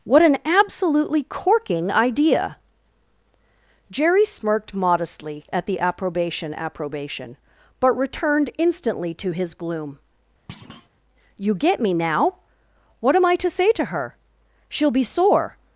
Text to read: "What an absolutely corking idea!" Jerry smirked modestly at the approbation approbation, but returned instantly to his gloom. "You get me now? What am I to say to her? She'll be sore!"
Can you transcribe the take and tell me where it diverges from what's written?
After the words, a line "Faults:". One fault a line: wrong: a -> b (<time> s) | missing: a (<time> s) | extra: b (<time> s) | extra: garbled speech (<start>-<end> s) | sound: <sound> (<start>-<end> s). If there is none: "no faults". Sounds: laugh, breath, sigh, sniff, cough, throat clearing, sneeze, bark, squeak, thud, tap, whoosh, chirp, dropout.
"What an absolutely corking idea!" Jerry smirked modestly at the approbation approbation, but returned instantly to his gloom. "You get me now? What am I to say to her? She'll be sore!"
Faults:
sound: thud (10.5-10.9 s)